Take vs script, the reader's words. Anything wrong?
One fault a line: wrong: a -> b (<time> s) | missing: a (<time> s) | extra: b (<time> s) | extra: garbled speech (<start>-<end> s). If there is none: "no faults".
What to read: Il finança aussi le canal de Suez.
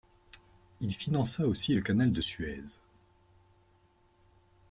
no faults